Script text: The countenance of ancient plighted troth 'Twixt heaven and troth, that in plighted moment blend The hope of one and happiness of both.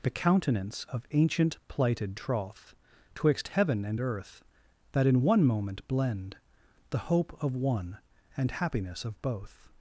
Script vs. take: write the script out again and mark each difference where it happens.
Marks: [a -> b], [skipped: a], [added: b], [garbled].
The countenance of ancient plighted troth 'Twixt heaven and [troth, -> earth] that in [plighted -> one] moment blend The hope of one and happiness of both.